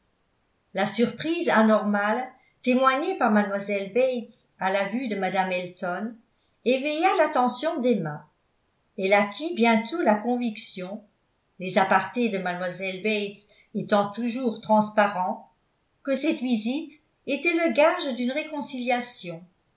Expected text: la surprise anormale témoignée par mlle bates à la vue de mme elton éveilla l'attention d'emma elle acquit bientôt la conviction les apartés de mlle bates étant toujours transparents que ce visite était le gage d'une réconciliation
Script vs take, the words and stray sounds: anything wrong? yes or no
yes